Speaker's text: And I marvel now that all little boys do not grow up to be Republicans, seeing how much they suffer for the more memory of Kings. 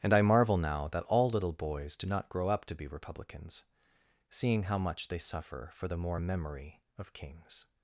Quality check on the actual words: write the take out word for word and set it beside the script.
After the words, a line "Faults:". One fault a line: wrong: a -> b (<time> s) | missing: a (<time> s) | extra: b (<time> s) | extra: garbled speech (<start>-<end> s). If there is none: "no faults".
And I marvel now that all little boys do not grow up to be Republicans, seeing how much they suffer for the more memory of Kings.
Faults:
no faults